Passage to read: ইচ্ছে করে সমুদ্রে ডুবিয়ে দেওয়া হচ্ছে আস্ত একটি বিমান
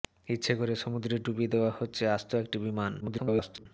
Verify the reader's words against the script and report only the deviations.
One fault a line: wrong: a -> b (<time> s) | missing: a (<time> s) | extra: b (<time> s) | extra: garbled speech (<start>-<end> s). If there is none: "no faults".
extra: garbled speech (3.0-3.7 s)